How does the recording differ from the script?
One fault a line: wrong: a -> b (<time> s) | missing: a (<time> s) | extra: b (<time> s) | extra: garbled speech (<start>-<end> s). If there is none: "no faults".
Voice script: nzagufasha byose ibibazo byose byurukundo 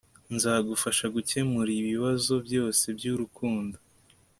wrong: byose -> gukemura (1.1 s)